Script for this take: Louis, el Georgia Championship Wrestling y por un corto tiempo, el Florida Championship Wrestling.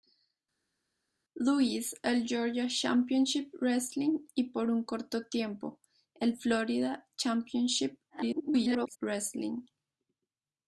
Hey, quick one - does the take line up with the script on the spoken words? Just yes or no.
no